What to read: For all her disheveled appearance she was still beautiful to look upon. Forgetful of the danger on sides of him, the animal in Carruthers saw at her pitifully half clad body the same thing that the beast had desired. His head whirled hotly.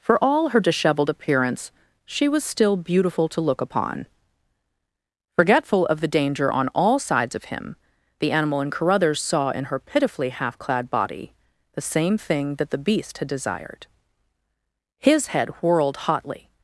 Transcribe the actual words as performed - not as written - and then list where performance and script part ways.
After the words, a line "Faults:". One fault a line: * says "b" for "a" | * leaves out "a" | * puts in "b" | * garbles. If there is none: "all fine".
For all her disheveled appearance she was still beautiful to look upon. Forgetful of the danger on all sides of him, the animal in Carruthers saw in her pitifully half clad body the same thing that the beast had desired. His head whirled hotly.
Faults:
* puts in "all"
* says "in" for "at"